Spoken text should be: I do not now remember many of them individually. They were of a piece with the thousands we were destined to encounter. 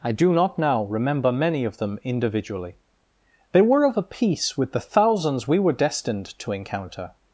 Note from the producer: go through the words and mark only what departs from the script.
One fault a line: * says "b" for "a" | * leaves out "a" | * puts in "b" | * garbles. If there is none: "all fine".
all fine